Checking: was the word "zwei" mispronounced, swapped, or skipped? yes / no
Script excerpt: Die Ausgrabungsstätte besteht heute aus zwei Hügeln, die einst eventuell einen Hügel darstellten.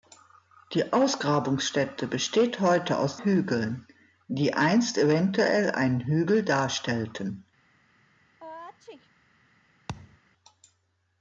yes